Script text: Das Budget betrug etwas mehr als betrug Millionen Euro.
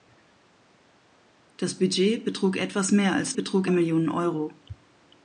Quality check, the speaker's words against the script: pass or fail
pass